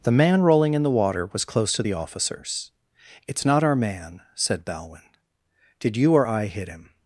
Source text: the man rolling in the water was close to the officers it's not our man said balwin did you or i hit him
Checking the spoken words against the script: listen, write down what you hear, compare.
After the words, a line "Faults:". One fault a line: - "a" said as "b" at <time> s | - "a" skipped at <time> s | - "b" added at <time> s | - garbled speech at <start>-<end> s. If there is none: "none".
the man rolling in the water was close to the officers it's not our man said balwin did you or i hit him
Faults:
none